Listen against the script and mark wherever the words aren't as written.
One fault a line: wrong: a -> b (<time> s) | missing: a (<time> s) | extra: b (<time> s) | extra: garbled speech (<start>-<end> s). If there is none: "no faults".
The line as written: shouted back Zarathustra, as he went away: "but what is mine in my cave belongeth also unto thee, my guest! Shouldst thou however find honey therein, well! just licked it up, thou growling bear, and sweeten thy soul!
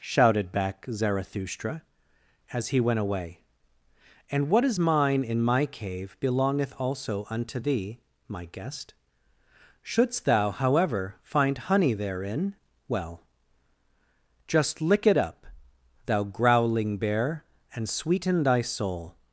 wrong: but -> and (4.3 s)
wrong: licked -> lick (14.8 s)